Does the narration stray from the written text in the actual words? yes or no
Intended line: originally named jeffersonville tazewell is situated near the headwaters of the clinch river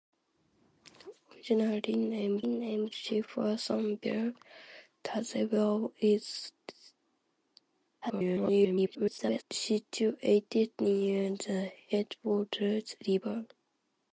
yes